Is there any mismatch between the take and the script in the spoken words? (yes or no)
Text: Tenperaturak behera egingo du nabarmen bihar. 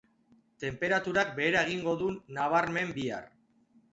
no